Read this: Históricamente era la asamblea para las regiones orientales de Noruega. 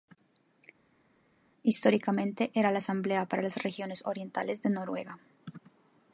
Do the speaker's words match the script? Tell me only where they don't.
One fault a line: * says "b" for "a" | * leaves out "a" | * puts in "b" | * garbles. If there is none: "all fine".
all fine